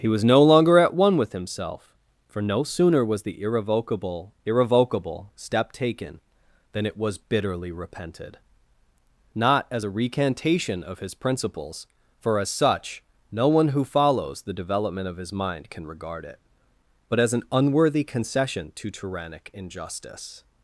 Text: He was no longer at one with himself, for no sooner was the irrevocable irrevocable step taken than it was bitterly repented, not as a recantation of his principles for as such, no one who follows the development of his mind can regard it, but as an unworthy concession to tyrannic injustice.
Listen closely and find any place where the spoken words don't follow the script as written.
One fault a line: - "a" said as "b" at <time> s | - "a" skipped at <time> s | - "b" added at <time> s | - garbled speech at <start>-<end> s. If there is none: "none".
none